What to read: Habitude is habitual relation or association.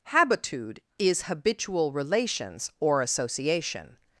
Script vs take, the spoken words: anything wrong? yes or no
yes